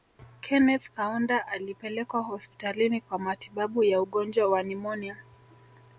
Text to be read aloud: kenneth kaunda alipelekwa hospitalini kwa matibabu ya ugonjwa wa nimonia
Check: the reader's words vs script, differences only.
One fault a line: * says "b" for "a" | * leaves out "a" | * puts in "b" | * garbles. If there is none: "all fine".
all fine